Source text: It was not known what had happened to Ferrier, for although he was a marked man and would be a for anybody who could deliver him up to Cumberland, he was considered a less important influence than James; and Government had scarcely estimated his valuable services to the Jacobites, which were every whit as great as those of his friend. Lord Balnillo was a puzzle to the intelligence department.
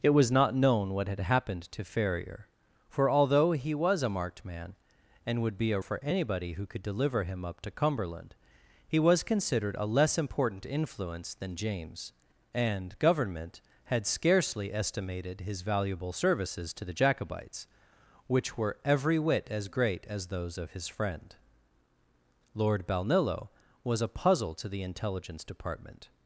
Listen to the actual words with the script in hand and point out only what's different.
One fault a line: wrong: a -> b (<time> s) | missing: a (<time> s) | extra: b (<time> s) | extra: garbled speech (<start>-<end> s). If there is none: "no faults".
no faults